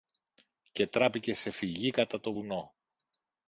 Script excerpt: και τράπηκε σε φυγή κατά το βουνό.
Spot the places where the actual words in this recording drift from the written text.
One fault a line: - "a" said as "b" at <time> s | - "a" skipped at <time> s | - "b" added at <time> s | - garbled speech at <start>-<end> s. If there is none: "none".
none